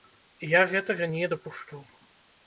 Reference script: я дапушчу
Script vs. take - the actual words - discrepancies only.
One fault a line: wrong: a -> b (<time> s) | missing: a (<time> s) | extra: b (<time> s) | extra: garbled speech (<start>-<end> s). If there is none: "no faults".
extra: гэтага не (0.7 s)